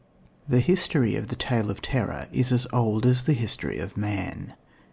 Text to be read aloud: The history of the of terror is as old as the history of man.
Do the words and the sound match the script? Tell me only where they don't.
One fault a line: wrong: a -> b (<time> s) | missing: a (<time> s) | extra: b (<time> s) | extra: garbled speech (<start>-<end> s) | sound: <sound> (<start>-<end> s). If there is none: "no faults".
extra: tale (1.3 s)